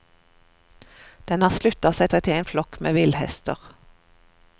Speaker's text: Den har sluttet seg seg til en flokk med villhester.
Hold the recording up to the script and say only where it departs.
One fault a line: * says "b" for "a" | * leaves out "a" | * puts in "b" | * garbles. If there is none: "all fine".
all fine